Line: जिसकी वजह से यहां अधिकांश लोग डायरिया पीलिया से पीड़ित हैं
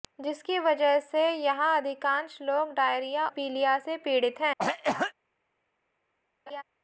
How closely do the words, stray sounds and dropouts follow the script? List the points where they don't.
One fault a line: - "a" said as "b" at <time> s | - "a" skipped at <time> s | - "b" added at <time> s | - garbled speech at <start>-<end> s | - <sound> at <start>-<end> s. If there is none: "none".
- cough at 4.6-5.1 s
- laugh at 6.5-6.6 s